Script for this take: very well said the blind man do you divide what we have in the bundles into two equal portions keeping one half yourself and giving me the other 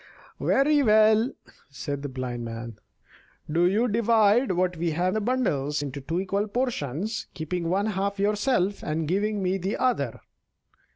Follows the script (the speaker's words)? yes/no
no